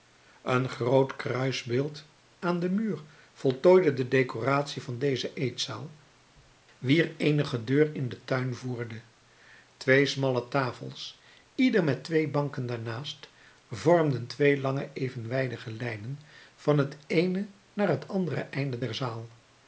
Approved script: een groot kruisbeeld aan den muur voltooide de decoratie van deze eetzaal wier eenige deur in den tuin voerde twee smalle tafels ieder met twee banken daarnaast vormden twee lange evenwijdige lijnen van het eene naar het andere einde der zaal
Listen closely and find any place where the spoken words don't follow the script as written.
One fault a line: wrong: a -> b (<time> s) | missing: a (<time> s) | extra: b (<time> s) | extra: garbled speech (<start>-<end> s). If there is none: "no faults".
no faults